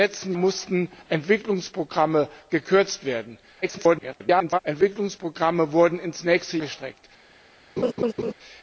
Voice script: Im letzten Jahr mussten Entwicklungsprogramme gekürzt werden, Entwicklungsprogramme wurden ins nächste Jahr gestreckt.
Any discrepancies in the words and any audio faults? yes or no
yes